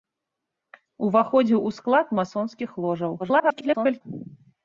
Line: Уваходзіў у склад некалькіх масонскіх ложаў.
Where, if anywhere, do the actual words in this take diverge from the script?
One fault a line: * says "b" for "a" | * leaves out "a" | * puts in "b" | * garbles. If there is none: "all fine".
* leaves out "некалькіх"
* garbles